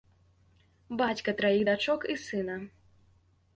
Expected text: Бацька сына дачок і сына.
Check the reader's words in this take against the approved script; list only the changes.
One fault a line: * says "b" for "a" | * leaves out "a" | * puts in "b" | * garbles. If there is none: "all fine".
* says "траіх" for "сына"